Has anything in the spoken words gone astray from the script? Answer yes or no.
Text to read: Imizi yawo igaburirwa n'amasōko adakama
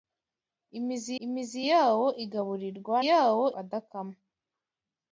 yes